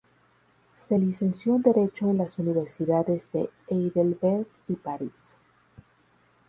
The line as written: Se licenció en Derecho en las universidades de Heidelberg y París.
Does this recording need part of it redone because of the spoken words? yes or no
no